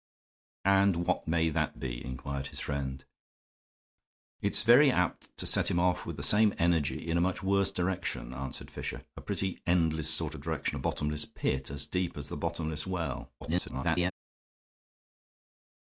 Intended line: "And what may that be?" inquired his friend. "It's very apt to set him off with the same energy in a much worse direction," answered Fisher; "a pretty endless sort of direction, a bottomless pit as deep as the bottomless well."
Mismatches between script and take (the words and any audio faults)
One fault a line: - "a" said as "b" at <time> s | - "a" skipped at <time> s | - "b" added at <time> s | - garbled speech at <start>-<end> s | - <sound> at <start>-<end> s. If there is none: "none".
- garbled speech at 13.4-14.1 s